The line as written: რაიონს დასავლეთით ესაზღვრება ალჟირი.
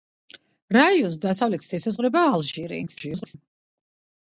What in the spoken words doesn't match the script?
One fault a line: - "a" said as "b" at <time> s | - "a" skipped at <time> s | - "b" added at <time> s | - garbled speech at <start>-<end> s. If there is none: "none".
- garbled speech at 2.9-3.4 s